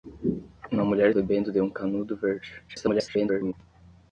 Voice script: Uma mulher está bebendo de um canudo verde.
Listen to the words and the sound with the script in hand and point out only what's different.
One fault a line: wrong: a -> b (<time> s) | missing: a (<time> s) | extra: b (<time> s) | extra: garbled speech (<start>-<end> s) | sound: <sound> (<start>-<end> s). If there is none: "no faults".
missing: está (1.1 s)
extra: garbled speech (2.7-3.5 s)